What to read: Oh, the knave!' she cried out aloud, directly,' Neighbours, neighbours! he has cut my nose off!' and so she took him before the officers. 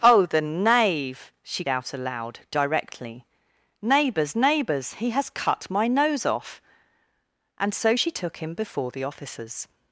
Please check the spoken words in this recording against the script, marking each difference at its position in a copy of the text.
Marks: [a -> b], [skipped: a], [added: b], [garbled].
Oh, the knave!' she [skipped: cried] out aloud, directly,' Neighbours, neighbours! he has cut my nose off!' and so she took him before the officers.